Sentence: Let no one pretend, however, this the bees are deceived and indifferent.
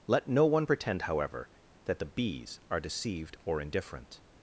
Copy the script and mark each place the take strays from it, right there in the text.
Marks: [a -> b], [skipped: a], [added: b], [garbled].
Let no one pretend, however, [this -> that] the bees are deceived [and -> or] indifferent.